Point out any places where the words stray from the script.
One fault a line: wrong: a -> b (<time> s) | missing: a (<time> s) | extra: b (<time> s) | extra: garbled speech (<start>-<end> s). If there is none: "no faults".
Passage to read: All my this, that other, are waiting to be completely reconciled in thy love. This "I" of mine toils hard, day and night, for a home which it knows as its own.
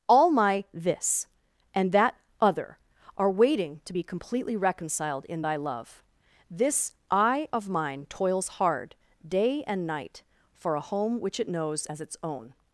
extra: and (1.7 s)